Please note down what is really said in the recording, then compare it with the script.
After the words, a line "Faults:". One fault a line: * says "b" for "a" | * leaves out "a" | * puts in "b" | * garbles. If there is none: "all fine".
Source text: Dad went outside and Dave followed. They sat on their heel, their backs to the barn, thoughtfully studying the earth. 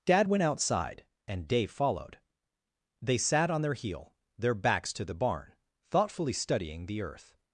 Dad went outside and Dave followed. They sat on their heel, their backs to the barn, thoughtfully studying the earth.
Faults:
all fine